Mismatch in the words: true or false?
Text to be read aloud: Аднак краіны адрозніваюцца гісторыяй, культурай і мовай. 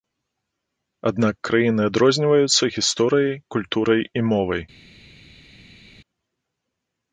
false